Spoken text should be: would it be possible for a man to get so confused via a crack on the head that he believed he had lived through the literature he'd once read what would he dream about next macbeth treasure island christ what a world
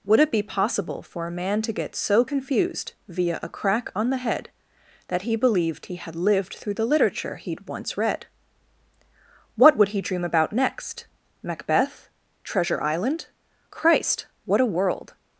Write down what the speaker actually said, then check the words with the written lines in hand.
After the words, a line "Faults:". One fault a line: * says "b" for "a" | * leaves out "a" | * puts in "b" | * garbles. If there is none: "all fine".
would it be possible for a man to get so confused via a crack on the head that he believed he had lived through the literature he'd once read what would he dream about next macbeth treasure island christ what a world
Faults:
all fine